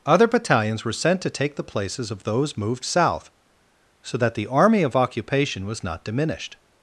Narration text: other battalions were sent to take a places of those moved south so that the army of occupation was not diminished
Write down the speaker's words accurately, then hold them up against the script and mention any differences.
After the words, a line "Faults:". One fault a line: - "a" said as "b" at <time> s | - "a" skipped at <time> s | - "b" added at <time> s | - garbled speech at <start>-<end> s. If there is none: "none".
other battalions were sent to take the places of those moved south so that the army of occupation was not diminished
Faults:
- "a" said as "the" at 1.6 s